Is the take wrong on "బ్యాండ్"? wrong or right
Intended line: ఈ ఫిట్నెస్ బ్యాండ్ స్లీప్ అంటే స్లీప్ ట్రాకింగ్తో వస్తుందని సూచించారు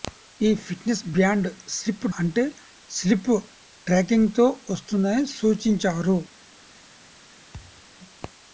right